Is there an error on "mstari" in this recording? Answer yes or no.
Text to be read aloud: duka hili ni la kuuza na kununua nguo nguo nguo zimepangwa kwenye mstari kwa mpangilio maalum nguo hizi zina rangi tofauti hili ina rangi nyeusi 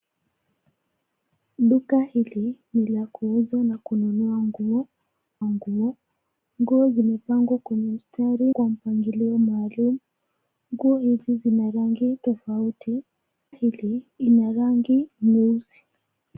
no